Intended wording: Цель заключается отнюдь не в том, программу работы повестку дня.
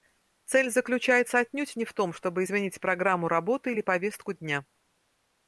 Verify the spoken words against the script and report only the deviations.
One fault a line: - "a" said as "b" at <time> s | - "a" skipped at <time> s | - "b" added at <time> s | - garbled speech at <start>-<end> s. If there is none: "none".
- "чтобы изменить" added at 2.1 s
- "или" added at 3.7 s